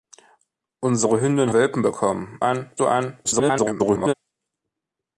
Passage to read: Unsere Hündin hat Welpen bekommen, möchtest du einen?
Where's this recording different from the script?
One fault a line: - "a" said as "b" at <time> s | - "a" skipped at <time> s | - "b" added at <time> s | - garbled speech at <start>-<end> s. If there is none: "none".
- "hat" skipped at 1.5 s
- "möchtest" said as "einen" at 2.4 s
- garbled speech at 3.2-4.1 s